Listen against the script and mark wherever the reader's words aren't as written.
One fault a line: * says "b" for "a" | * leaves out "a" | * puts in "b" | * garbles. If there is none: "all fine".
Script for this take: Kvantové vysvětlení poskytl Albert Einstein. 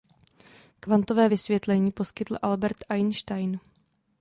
all fine